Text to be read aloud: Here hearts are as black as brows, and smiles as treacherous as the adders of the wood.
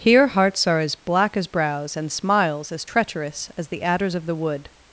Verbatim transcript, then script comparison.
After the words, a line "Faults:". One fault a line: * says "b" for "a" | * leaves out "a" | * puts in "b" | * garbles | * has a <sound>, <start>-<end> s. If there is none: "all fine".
Here hearts are as black as brows, and smiles as treacherous as the adders of the wood.
Faults:
all fine